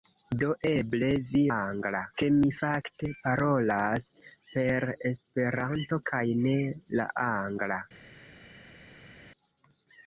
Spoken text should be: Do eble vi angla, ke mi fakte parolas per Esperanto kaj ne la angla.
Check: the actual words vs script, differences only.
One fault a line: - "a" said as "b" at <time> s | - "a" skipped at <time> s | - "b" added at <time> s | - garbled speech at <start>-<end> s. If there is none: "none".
none